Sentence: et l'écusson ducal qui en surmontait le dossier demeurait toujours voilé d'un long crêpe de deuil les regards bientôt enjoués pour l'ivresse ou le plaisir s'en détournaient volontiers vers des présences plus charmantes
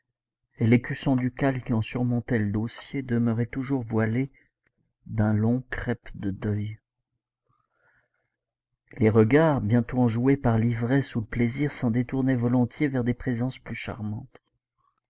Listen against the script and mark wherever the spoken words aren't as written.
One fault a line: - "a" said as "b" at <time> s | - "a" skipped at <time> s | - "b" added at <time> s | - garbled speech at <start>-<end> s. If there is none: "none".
- "pour" said as "par" at 10.4 s